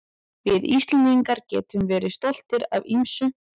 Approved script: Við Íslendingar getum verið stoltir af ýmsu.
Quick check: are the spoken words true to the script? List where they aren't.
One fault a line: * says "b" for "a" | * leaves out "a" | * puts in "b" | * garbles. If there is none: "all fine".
all fine